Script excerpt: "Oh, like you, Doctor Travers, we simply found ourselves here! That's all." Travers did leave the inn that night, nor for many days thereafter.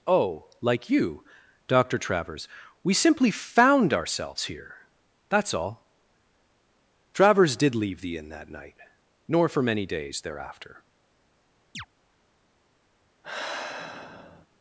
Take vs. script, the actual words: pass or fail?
pass